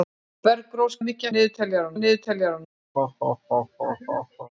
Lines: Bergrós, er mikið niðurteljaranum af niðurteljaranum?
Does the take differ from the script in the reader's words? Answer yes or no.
no